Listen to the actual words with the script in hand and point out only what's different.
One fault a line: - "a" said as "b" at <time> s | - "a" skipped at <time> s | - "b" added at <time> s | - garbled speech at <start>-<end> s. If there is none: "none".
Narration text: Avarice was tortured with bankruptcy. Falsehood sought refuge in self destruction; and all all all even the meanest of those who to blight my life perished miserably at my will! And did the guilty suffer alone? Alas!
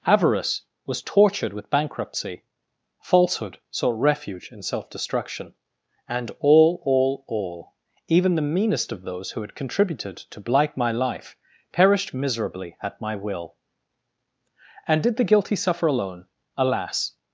- "had contributed" added at 9.4 s